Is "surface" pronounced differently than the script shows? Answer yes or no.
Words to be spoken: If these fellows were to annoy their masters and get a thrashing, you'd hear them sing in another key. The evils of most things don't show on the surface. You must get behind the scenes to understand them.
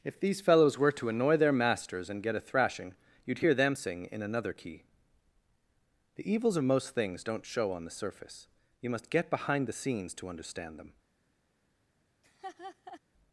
no